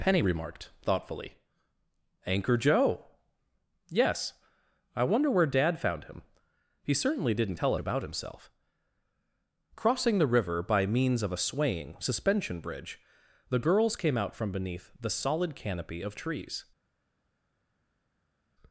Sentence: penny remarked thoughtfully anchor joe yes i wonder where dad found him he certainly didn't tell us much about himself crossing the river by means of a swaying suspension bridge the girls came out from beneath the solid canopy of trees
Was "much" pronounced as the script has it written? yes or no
no